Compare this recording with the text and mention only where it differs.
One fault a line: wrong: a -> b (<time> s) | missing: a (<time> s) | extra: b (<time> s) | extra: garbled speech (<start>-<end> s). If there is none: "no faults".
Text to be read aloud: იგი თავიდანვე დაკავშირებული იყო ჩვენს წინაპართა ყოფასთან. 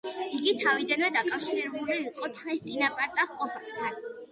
no faults